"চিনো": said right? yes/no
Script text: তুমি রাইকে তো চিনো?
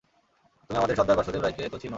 yes